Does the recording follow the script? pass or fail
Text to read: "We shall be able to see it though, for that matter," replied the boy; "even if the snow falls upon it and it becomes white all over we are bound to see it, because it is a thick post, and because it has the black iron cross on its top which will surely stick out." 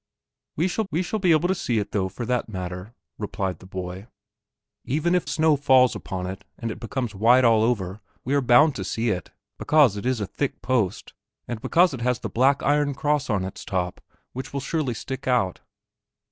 fail